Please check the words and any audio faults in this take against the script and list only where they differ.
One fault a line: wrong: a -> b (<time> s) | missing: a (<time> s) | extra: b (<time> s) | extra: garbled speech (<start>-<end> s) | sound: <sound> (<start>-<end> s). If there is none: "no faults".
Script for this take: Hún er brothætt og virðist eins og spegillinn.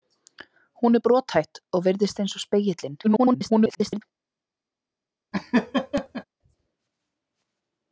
extra: garbled speech (3.0-4.0 s)
sound: laugh (5.3-6.2 s)